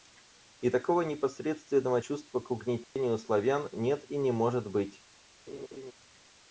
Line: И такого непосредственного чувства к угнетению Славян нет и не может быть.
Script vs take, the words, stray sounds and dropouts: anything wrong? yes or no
yes